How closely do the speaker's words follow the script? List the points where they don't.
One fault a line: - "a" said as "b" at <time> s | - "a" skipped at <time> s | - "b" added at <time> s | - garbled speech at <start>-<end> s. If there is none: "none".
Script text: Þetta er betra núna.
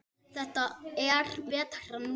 none